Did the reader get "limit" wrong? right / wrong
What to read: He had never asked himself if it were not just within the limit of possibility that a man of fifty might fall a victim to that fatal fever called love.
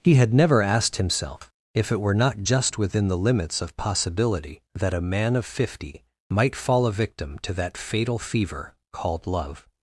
wrong